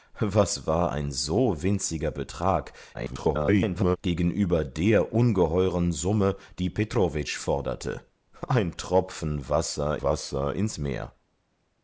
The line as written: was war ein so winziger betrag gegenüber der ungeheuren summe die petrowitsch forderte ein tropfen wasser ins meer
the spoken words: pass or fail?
fail